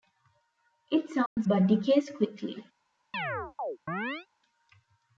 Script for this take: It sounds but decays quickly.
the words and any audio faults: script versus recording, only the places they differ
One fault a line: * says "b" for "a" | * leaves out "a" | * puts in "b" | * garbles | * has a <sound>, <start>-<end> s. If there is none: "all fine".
* has a dropout, 1.3-1.4 s
* has a chirp, 3.1-4.3 s